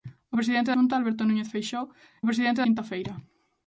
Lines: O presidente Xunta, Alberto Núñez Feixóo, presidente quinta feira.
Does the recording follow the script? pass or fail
pass